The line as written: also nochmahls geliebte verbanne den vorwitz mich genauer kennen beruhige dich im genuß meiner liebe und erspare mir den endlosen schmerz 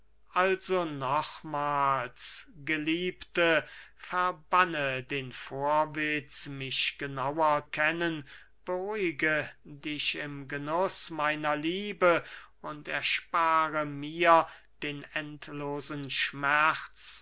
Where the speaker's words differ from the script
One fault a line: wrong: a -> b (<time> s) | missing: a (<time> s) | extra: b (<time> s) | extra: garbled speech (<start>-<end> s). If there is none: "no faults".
no faults